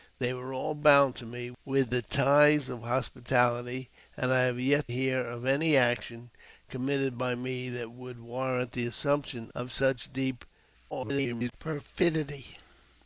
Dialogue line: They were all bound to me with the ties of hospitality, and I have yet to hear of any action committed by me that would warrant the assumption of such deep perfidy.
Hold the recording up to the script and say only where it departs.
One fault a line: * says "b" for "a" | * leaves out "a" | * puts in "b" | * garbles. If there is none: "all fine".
* leaves out "to"
* garbles